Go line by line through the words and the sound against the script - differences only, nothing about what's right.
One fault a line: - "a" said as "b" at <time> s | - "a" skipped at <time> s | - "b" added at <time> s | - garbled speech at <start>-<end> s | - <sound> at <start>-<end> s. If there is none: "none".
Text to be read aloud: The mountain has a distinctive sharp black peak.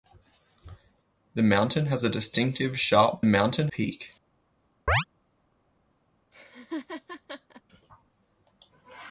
- "black" said as "mountain" at 3.3 s
- chirp at 4.9-5.0 s
- laugh at 6.3-7.6 s